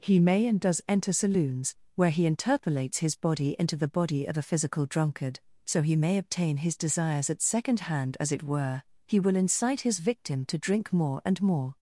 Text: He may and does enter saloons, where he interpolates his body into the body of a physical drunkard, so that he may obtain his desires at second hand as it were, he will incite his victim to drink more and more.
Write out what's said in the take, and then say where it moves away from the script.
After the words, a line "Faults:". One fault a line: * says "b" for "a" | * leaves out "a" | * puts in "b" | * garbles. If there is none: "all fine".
He may and does enter saloons, where he interpolates his body into the body of a physical drunkard, so he may obtain his desires at second hand as it were, he will incite his victim to drink more and more.
Faults:
* leaves out "that"